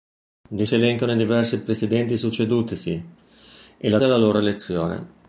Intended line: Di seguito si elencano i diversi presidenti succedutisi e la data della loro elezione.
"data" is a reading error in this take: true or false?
true